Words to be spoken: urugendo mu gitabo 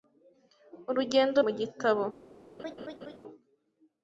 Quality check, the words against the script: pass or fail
pass